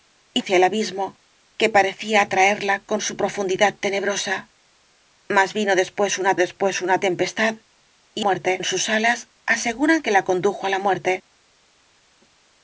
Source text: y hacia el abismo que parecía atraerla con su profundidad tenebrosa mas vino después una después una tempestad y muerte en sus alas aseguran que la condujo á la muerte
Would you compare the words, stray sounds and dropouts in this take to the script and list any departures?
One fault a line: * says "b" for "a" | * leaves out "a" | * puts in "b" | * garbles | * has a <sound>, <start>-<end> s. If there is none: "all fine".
all fine